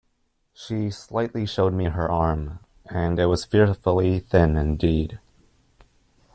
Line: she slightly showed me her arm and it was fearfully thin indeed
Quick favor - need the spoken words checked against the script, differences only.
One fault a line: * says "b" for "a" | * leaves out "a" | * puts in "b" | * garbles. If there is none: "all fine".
all fine